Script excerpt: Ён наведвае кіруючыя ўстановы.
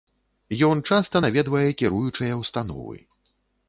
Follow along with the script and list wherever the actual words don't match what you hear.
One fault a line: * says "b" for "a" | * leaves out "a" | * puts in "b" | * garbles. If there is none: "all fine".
* puts in "часта"